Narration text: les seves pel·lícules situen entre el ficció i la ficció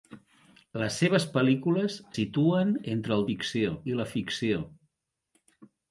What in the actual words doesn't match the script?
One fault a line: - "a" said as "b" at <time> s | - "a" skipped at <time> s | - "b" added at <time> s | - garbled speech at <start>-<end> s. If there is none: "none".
none